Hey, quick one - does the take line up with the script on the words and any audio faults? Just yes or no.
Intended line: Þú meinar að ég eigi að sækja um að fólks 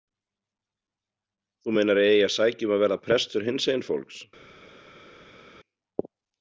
no